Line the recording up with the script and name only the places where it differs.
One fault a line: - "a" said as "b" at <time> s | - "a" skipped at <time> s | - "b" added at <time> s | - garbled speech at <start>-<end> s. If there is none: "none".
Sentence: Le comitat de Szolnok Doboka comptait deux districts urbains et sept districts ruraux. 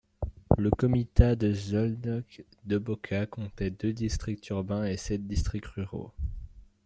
none